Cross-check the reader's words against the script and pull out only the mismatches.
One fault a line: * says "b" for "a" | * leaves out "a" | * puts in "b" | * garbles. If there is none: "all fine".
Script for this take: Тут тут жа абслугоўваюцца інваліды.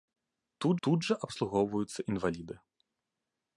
all fine